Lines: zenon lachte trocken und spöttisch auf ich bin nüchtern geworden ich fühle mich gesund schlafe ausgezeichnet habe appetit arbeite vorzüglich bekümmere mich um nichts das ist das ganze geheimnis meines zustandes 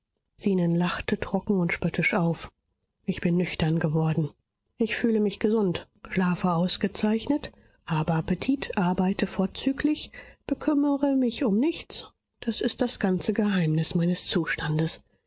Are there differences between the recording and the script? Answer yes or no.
no